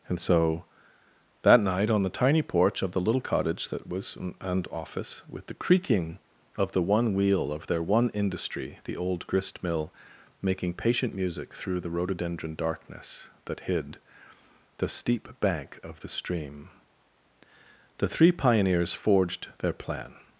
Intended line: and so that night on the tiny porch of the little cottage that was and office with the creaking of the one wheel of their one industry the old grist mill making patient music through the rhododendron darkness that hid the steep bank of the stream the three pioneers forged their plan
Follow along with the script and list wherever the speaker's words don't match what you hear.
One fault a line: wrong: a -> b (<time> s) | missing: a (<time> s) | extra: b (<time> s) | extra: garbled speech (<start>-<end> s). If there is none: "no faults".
no faults